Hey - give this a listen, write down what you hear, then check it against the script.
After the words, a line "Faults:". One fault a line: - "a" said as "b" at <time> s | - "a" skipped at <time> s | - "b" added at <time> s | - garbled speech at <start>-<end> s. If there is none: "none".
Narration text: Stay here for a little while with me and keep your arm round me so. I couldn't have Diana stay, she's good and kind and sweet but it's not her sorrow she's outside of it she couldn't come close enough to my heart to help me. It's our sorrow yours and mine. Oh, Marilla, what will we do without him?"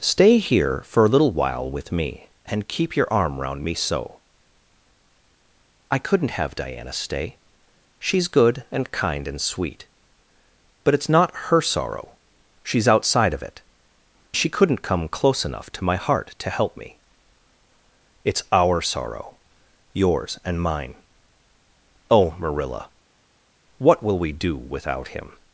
Stay here for a little while with me and keep your arm round me so. I couldn't have Diana stay, she's good and kind and sweet but it's not her sorrow she's outside of it she couldn't come close enough to my heart to help me. It's our sorrow yours and mine. Oh, Marilla, what will we do without him?"
Faults:
none